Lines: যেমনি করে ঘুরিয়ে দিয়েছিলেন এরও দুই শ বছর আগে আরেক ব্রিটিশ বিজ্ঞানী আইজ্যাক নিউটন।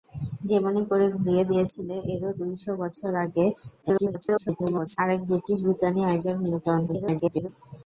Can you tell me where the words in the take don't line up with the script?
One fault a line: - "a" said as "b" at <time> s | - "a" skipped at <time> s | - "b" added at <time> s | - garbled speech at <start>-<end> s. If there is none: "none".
- garbled speech at 3.8-5.0 s
- garbled speech at 6.9-7.5 s